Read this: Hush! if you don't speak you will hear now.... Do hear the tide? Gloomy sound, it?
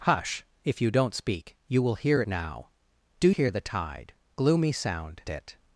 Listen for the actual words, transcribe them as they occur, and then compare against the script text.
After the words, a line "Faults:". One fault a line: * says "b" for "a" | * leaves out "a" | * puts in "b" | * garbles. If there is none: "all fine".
Hush! if you don't speak you will hear now.... Do hear the tide? Gloomy sound, it?
Faults:
all fine